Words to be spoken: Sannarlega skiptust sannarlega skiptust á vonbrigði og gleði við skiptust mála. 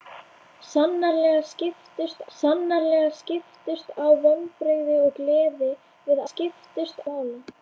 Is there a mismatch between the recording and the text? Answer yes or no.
no